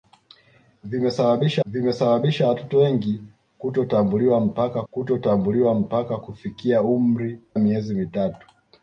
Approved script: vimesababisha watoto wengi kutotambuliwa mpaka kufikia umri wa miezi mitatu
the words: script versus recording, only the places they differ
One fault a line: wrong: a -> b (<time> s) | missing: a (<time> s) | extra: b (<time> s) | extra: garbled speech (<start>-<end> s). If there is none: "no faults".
extra: vimesababisha (1.6 s)
extra: kutotambuliwa mpaka (4.9 s)
missing: wa (7.4 s)